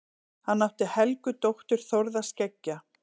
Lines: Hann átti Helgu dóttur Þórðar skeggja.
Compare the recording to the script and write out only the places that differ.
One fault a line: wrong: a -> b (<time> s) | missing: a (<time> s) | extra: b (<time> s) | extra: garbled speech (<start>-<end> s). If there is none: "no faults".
no faults